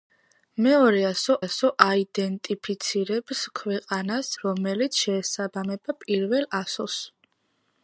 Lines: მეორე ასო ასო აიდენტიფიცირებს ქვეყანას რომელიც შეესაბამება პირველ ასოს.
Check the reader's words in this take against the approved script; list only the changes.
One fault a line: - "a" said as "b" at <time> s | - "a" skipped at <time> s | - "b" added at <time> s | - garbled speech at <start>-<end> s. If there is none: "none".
none